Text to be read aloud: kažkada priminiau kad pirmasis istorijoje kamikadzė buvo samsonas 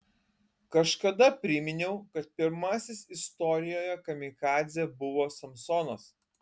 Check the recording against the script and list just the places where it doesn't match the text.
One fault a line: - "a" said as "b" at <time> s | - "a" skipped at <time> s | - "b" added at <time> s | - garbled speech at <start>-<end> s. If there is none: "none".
none